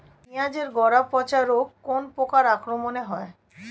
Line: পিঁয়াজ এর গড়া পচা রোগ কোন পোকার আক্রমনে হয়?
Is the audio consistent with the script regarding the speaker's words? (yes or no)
yes